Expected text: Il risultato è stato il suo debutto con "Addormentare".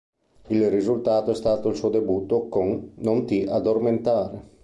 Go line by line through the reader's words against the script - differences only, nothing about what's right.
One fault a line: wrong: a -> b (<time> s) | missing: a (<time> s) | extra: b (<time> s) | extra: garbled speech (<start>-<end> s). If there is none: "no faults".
extra: Non ti (3.0 s)